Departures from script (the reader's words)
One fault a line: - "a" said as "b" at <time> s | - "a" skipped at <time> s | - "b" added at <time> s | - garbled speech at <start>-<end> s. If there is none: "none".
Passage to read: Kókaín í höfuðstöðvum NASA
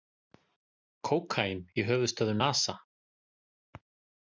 none